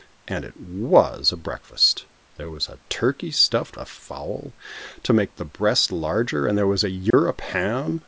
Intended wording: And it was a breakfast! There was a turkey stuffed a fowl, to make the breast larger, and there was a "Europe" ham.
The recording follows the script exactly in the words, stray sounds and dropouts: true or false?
false